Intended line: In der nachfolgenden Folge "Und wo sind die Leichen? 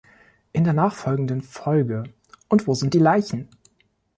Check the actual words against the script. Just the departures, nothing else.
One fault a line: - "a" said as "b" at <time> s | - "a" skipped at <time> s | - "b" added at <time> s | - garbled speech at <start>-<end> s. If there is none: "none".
none